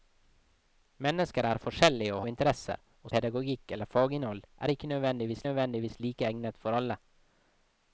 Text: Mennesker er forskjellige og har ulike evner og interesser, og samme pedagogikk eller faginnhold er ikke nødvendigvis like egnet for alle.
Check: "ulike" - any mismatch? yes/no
yes